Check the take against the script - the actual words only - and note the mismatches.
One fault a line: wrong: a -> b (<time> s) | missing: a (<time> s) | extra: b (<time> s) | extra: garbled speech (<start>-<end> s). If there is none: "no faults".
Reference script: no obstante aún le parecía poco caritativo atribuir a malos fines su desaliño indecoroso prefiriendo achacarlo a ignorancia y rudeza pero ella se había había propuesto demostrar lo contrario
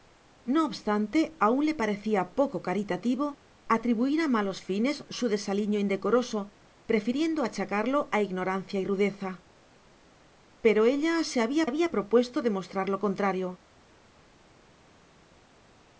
no faults